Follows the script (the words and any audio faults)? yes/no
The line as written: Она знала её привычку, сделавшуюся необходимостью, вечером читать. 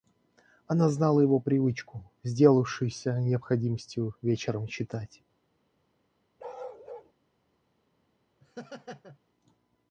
no